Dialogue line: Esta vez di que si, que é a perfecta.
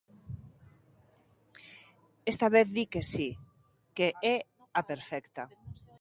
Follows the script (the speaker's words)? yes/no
yes